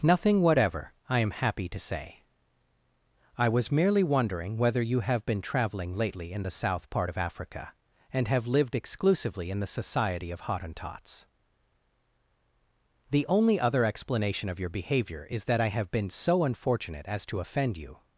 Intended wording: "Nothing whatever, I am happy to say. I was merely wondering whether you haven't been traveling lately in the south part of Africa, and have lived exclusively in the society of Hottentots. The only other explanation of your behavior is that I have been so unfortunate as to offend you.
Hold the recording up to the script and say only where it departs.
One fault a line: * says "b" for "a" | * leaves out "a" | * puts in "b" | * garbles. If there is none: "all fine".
* says "have" for "haven't"